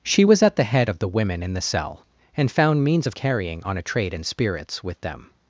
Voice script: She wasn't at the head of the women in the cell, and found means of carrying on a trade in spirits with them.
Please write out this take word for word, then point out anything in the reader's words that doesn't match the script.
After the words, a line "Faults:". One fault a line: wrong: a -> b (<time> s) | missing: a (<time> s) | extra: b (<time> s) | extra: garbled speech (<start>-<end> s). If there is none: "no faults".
She was at the head of the women in the cell, and found means of carrying on a trade in spirits with them.
Faults:
wrong: wasn't -> was (0.2 s)